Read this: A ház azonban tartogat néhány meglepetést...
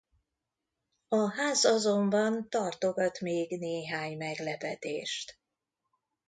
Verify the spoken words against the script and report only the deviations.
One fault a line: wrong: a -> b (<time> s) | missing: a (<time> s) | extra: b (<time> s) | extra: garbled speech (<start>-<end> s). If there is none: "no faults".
extra: még (3.2 s)